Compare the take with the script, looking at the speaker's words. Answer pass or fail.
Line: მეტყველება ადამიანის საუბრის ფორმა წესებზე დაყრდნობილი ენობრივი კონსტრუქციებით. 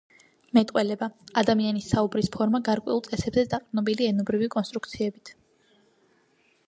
fail